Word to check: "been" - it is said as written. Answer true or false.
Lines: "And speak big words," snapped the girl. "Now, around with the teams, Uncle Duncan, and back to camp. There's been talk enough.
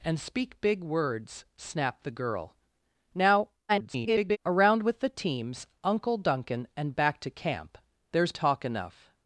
false